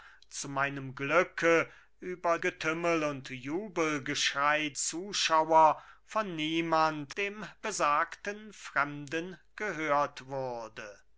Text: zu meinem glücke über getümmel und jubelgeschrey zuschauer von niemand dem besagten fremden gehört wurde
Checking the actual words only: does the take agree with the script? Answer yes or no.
yes